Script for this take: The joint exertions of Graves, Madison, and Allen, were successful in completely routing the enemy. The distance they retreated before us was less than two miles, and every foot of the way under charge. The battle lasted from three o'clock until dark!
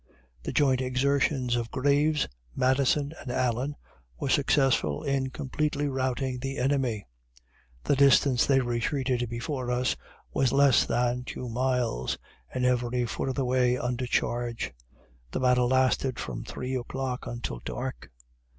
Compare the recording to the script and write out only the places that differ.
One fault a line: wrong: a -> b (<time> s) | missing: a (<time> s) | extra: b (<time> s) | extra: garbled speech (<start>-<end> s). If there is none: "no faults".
no faults